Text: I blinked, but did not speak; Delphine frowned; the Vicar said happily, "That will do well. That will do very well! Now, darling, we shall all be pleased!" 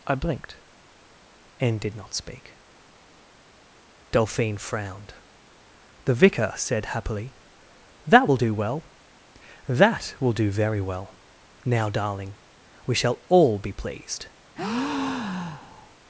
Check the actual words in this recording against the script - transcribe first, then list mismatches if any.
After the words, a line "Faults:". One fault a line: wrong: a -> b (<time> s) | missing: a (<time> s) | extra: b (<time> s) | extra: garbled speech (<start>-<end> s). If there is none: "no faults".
I blinked, and did not speak; Delphine frowned; the Vicar said happily, "That will do well. That will do very well! Now, darling, we shall all be pleased!"
Faults:
wrong: but -> and (1.6 s)